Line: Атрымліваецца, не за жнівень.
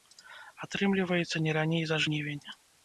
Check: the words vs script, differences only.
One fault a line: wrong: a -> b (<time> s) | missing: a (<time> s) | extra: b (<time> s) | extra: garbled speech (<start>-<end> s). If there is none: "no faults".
extra: раней (1.6 s)